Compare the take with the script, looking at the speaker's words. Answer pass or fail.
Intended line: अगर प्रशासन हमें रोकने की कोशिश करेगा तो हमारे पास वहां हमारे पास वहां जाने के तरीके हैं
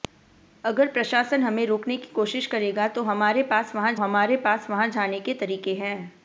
pass